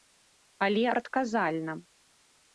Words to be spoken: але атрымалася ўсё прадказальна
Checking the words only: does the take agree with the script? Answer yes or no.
no